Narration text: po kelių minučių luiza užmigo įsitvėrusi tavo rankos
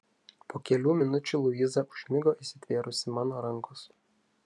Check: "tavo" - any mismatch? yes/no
yes